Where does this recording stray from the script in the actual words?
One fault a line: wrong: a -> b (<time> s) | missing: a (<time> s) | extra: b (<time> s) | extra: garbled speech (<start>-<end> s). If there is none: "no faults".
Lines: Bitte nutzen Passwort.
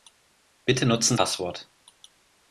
no faults